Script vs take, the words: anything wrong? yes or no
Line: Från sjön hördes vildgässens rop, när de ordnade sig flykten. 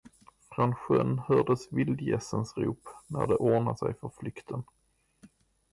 yes